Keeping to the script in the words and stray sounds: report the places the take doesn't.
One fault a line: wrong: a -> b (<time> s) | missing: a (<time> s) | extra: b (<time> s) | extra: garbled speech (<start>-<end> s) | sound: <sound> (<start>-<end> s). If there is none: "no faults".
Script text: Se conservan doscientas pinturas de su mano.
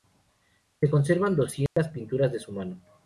sound: dropout (1.7-1.8 s)